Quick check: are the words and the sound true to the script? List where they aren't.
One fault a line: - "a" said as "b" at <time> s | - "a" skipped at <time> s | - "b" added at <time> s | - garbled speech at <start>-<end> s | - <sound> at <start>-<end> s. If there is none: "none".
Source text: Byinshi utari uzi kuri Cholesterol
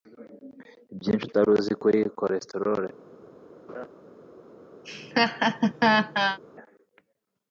- laugh at 3.7-3.9 s
- laugh at 4.8-6.4 s